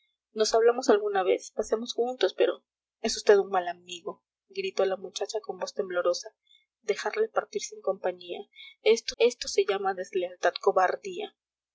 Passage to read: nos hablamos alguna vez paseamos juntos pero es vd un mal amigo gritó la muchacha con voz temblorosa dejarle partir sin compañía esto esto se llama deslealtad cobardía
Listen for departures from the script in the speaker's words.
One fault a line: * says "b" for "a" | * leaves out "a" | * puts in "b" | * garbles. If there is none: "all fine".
all fine